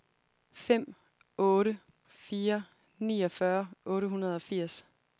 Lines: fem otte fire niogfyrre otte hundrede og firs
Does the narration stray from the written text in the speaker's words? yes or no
no